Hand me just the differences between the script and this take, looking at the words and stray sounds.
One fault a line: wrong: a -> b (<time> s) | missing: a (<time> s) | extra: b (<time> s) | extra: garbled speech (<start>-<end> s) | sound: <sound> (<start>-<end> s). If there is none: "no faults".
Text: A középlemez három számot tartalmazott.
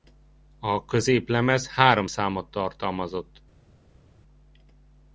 no faults